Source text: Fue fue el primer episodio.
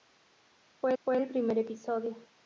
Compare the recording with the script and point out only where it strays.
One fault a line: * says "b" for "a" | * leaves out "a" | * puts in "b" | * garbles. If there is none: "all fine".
all fine